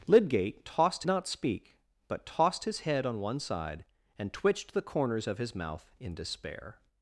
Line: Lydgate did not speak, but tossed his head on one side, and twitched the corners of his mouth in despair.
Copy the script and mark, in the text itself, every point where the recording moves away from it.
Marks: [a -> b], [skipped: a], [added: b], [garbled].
Lydgate [did -> tossed] not speak, but tossed his head on one side, and twitched the corners of his mouth in despair.